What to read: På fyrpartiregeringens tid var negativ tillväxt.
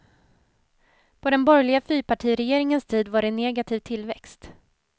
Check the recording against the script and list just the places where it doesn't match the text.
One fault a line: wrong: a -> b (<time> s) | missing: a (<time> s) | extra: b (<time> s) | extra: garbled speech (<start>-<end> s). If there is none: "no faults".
extra: den borgerliga (1.3 s)
extra: det (3.2 s)